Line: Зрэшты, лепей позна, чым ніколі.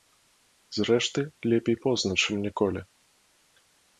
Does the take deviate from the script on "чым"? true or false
false